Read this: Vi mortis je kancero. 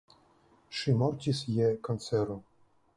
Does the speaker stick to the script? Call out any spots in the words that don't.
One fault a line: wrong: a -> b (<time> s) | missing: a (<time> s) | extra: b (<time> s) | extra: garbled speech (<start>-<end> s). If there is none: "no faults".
wrong: Vi -> Ŝi (0.8 s)